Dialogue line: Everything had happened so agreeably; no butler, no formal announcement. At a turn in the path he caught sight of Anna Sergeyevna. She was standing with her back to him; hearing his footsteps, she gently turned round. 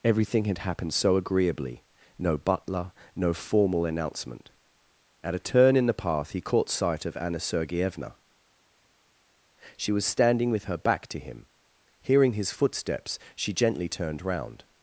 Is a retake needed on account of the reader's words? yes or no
no